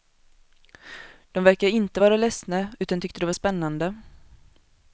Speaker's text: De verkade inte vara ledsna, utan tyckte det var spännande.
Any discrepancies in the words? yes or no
no